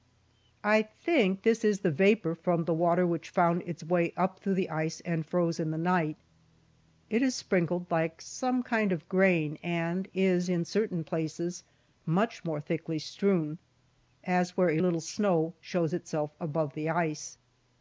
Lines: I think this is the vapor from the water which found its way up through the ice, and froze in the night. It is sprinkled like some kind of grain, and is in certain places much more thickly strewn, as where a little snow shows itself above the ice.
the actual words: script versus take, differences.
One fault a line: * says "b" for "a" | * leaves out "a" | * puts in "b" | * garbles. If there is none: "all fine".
all fine